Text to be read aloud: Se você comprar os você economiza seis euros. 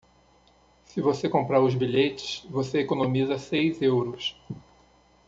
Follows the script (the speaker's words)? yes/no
no